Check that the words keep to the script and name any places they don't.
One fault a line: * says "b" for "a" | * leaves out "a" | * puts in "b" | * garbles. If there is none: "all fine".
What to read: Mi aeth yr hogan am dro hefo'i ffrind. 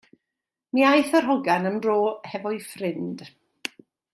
all fine